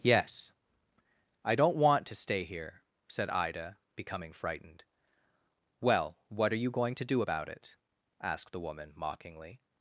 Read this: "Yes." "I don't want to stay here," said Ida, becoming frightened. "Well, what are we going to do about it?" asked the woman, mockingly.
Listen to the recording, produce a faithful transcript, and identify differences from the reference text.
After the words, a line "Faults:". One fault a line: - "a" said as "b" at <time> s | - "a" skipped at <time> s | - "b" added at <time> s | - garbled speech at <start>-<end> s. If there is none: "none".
"Yes." "I don't want to stay here," said Ida, becoming frightened. "Well, what are you going to do about it?" asked the woman, mockingly.
Faults:
- "we" said as "you" at 6.6 s